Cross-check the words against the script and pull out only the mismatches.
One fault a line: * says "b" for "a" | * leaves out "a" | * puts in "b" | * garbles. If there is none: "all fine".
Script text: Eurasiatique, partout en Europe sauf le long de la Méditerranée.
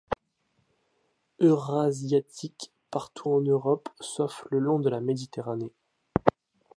all fine